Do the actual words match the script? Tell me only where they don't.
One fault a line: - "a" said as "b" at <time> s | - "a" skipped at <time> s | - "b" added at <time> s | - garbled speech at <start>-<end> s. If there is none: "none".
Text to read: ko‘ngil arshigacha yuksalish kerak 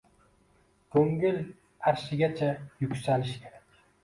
none